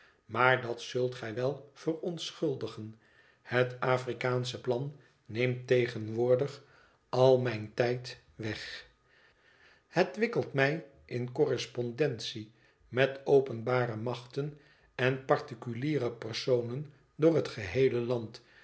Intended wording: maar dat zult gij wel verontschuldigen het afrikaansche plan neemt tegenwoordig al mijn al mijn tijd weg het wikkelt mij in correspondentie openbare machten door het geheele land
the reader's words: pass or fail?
fail